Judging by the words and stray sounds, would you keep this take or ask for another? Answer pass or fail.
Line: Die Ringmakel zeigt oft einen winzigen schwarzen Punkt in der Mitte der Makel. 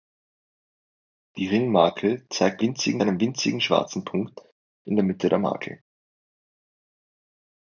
fail